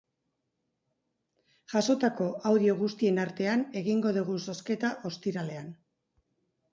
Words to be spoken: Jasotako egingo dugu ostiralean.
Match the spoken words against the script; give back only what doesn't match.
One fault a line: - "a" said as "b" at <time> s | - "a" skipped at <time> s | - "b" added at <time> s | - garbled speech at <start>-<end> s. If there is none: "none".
- "audio guztien artean" added at 2.5 s
- "zozketa" added at 4.5 s